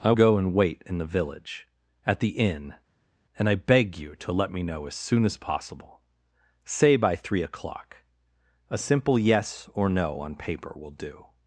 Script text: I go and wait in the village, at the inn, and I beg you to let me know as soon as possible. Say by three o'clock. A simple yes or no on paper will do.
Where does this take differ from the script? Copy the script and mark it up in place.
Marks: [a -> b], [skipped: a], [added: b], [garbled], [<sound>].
I go and wait in the village, at the inn, and I beg you to let me know as soon as possible. Say by three o'clock. A simple yes or no on paper will do.